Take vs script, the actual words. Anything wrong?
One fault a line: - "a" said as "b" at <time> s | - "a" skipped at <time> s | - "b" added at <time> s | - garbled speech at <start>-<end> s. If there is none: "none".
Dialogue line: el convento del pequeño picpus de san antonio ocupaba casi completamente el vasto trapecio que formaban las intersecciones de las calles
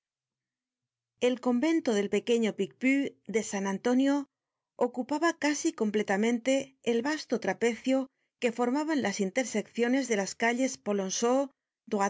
none